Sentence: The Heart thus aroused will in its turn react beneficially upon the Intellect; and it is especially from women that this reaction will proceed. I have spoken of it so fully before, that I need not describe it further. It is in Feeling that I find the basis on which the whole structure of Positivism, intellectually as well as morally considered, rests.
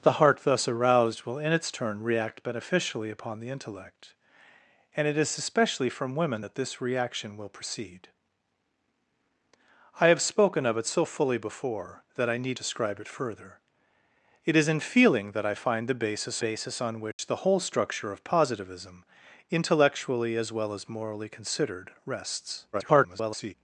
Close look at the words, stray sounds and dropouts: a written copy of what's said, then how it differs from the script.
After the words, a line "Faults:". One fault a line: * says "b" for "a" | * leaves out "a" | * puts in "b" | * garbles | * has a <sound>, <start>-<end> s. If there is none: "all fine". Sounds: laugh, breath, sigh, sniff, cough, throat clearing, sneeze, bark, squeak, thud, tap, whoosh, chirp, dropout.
The Heart thus aroused will in its turn react beneficially upon the Intellect; and it is especially from women that this reaction will proceed. I have spoken of it so fully before, that I need describe it further. It is in Feeling that I find the basis basis on which the whole structure of Positivism, intellectually as well as morally considered, rests. [garbled]
Faults:
* leaves out "not"
* puts in "basis"
* has a dropout, 17.1-17.2 s
* garbles